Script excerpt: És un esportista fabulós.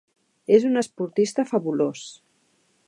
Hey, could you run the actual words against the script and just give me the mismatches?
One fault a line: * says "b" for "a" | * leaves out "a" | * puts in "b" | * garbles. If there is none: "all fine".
all fine